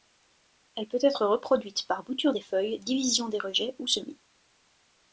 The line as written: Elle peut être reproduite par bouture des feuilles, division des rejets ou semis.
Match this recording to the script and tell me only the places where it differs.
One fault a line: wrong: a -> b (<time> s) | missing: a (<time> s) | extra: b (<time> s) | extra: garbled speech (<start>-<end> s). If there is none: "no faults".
no faults